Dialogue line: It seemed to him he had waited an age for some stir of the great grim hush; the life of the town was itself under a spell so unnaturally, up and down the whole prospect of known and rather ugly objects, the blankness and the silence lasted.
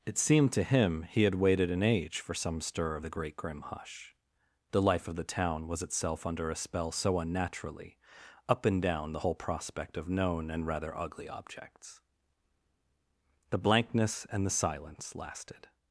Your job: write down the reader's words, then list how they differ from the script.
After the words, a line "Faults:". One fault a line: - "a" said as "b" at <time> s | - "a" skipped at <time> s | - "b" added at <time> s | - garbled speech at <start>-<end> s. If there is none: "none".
It seemed to him he had waited an age for some stir of the great grim hush; the life of the town was itself under a spell so unnaturally, up and down the whole prospect of known and rather ugly objects, the blankness and the silence lasted.
Faults:
none